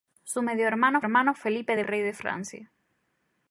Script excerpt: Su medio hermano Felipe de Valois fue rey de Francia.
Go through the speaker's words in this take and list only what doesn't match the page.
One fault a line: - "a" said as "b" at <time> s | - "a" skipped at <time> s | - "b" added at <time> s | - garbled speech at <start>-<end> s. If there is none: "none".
- "hermano" added at 1.0 s
- "Valois fue" skipped at 1.8 s